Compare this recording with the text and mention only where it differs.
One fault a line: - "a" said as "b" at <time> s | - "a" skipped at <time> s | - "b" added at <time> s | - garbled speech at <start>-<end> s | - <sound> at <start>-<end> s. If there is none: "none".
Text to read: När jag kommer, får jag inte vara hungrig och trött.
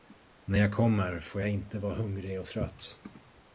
none